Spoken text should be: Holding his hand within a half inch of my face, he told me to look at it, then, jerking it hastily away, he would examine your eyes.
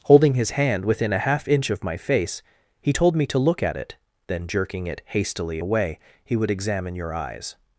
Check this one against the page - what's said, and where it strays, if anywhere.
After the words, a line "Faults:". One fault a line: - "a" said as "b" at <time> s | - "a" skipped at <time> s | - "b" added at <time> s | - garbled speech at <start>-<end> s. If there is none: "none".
Holding his hand within a half inch of my face, he told me to look at it, then, jerking it hastily away, he would examine your eyes.
Faults:
none